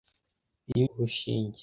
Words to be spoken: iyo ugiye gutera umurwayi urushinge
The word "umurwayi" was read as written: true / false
false